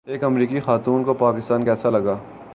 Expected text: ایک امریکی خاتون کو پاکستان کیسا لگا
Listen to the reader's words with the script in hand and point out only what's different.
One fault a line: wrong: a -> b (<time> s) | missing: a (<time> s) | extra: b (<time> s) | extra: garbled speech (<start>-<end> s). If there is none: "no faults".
no faults